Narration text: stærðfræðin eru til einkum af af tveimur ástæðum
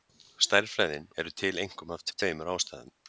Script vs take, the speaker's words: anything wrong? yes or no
no